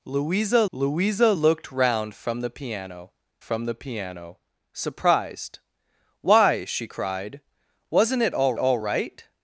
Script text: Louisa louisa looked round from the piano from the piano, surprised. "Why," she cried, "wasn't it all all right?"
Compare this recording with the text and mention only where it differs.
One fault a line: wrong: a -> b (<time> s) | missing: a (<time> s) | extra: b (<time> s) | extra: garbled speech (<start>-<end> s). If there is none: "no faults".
no faults